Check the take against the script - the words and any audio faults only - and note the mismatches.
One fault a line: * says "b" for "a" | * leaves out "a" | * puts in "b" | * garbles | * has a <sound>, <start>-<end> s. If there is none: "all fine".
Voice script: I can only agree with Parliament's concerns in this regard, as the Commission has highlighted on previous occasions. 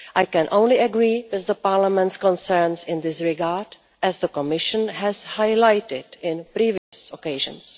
* has a dropout, 6.8-6.9 s